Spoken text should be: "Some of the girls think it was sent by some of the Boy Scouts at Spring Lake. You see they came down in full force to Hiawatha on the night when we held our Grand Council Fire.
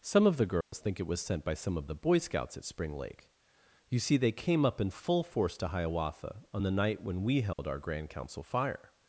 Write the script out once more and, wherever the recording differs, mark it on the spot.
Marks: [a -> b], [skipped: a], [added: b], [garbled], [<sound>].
"Some of the girls [dropout] think it was sent by some of the Boy Scouts at Spring Lake. You see they came [down -> up] in full force to Hiawatha on the night when we held [dropout] our Grand Council Fire.